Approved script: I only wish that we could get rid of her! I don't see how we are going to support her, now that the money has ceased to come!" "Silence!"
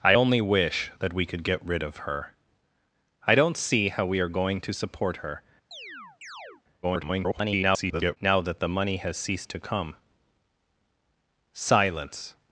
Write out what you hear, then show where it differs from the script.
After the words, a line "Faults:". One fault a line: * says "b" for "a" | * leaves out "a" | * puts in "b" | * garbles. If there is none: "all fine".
I only wish that we could get rid of her! I don't see how we are going to support her, [garbled] now that the money has ceased to come!" "Silence!"
Faults:
* garbles